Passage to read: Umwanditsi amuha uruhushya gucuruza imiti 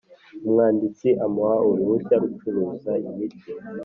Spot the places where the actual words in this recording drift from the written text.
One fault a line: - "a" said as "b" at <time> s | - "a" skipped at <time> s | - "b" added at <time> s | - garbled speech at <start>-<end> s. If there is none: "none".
none